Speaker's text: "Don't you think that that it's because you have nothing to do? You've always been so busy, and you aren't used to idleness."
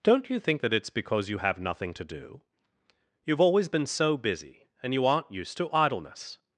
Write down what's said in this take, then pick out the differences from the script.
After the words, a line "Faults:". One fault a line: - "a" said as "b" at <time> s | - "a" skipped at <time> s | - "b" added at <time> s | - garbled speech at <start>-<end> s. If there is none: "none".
"Don't you think that it's because you have nothing to do? You've always been so busy, and you aren't used to idleness."
Faults:
- "that" skipped at 0.7 s